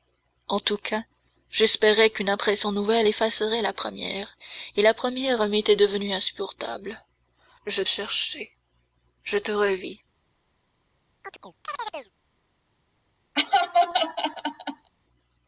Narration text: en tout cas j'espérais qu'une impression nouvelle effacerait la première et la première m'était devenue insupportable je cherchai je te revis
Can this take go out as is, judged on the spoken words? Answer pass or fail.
pass